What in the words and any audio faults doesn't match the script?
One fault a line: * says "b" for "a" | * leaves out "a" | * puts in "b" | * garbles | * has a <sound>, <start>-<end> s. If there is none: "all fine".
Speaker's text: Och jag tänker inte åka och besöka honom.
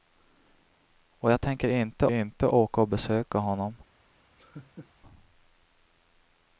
* puts in "inte"
* has a laugh, 4.4-4.9 s